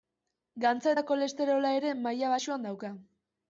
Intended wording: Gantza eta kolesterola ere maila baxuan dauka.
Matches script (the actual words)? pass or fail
pass